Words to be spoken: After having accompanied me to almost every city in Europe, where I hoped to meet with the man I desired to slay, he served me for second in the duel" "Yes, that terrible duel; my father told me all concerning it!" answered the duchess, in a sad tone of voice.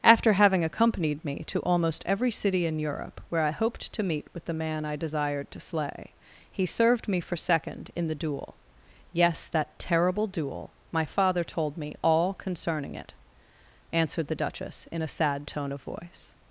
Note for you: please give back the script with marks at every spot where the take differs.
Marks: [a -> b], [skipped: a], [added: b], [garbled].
After having accompanied me to almost every city in Europe, where I hoped to meet with the man I desired to slay, he served me for second in the duel" "Yes, that terrible duel; my father told me all concerning it!" answered the duchess, in a sad tone of voice.